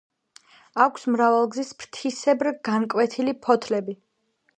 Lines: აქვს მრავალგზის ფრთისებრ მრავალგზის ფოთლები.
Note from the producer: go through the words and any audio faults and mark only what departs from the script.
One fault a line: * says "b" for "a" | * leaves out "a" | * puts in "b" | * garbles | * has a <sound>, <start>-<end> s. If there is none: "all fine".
* says "განკვეთილი" for "მრავალგზის"